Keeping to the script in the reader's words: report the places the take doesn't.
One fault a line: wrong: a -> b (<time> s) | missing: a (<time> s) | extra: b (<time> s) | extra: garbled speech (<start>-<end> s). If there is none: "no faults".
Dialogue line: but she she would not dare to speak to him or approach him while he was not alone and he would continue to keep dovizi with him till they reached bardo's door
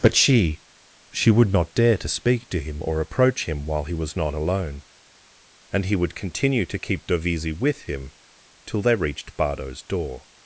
no faults